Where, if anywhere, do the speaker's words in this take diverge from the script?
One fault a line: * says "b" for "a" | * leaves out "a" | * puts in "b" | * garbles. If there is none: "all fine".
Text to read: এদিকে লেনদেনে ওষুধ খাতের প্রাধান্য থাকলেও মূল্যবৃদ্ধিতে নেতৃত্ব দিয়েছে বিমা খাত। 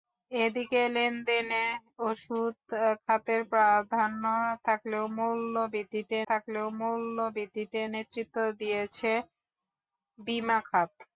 * puts in "থাকলেও মূল্যবৃদ্ধিতে"